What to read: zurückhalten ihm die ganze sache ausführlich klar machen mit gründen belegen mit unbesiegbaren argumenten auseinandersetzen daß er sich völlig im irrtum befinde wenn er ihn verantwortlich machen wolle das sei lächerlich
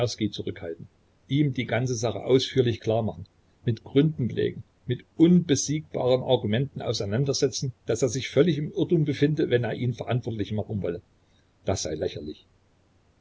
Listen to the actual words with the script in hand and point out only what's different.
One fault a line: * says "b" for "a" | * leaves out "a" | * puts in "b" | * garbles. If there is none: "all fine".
all fine